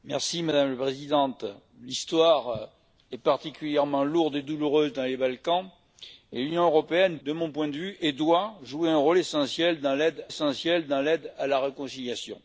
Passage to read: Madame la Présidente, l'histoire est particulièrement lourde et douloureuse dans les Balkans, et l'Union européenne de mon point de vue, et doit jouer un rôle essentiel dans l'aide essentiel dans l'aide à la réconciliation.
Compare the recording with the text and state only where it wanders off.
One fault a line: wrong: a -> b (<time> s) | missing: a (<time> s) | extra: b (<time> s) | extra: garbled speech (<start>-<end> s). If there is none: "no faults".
no faults